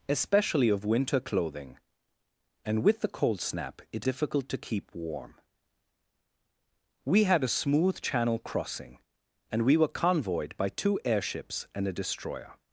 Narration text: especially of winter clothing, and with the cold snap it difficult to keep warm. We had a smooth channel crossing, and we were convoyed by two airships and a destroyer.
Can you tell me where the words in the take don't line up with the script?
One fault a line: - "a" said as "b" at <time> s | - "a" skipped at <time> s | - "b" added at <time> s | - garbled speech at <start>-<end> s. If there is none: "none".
none